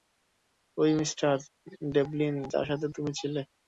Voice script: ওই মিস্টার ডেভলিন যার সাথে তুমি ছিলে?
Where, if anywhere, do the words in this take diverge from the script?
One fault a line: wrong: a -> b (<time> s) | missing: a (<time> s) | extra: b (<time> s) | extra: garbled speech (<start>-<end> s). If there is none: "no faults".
no faults